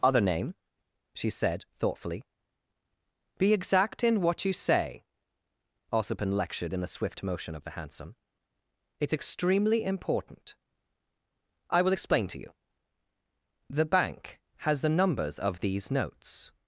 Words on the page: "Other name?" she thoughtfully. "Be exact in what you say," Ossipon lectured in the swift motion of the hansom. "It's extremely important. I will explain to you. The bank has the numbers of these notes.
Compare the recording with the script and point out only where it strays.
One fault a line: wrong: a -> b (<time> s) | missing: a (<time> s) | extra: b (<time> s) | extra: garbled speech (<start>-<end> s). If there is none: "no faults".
extra: said (1.3 s)